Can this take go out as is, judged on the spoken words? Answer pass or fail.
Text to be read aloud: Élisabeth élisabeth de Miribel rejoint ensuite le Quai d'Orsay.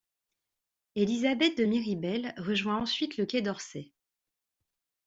fail